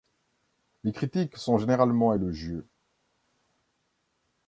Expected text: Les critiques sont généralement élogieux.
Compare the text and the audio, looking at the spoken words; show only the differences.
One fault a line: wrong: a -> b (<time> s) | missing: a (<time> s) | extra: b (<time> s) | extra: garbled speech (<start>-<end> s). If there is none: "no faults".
no faults